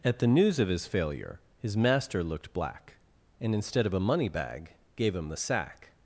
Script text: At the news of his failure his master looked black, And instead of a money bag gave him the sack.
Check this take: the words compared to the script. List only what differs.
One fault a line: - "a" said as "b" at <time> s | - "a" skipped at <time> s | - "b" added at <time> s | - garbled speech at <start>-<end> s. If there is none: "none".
none